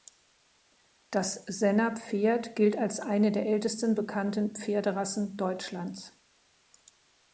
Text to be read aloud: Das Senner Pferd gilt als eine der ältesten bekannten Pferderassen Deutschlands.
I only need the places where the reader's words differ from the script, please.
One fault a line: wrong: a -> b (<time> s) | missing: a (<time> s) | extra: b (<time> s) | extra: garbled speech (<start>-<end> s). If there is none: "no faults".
no faults